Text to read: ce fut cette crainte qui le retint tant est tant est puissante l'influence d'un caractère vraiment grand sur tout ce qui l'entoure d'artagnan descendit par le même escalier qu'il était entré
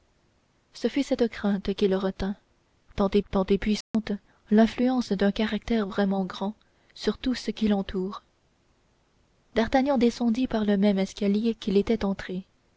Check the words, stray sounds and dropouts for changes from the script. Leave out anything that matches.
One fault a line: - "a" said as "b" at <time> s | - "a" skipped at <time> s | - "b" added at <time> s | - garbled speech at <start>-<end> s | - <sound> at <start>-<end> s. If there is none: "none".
- dropout at 3.8-3.9 s